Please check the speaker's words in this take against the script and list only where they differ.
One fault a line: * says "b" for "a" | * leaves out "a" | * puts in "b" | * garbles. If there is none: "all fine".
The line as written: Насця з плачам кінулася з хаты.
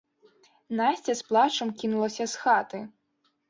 all fine